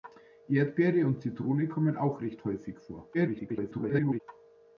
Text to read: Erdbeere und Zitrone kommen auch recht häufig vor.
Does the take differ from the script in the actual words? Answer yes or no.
yes